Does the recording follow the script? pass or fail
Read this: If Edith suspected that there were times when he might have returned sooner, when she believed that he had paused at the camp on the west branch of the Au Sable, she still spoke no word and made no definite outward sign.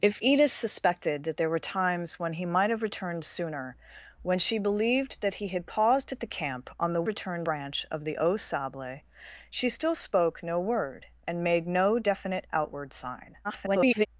fail